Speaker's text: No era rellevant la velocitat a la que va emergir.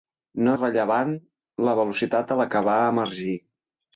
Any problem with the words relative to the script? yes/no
yes